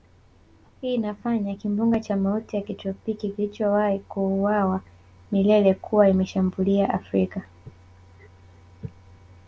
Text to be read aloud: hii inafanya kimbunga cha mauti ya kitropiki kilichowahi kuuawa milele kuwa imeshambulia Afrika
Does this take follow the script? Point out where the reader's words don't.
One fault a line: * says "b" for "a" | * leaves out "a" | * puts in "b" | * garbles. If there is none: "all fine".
all fine